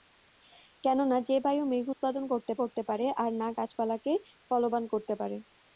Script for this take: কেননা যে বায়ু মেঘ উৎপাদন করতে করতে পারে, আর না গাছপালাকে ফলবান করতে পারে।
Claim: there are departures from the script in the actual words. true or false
false